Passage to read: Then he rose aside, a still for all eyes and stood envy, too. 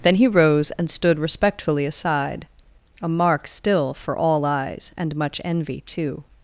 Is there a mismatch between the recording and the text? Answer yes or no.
yes